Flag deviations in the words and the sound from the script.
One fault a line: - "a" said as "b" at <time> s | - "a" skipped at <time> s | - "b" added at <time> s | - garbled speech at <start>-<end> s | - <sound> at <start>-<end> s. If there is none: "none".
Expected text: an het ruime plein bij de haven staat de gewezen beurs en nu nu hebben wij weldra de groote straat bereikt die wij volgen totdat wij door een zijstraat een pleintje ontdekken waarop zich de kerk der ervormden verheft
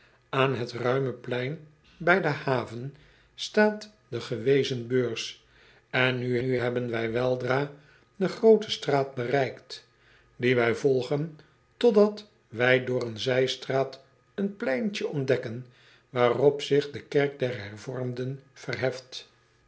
none